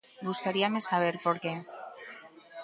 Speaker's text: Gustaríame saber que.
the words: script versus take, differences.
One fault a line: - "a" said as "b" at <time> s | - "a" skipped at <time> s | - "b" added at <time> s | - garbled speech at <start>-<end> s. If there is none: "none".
- "por" added at 1.2 s